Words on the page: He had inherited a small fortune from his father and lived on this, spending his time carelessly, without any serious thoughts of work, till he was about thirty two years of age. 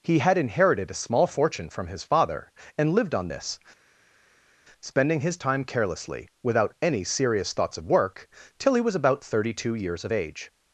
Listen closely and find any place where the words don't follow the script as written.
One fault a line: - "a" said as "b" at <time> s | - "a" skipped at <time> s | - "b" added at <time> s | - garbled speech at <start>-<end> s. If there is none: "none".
none